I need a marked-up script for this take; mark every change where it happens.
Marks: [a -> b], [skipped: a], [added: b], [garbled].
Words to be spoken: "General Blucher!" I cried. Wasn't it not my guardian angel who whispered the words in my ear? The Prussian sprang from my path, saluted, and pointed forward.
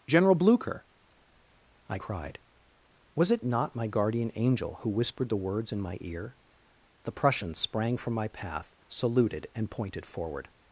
"General Blucher!" I cried. [Wasn't -> Was] it not my guardian angel who whispered the words in my ear? The Prussian sprang from my path, saluted, and pointed forward.